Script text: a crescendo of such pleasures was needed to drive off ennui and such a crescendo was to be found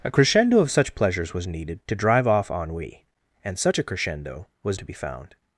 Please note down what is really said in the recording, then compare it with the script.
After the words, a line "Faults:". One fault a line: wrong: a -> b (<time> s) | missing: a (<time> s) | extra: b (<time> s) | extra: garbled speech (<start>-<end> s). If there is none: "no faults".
a crescendo of such pleasures was needed to drive off ennui and such a crescendo was to be found
Faults:
no faults